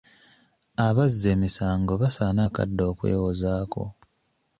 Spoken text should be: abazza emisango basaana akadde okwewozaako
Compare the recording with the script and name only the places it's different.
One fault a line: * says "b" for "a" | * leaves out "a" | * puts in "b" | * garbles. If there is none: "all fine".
all fine